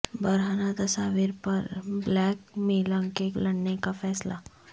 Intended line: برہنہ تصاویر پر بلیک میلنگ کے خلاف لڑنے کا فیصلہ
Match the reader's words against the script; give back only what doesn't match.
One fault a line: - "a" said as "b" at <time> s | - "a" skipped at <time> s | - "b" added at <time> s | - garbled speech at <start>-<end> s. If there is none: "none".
- "خلاف" skipped at 3.3 s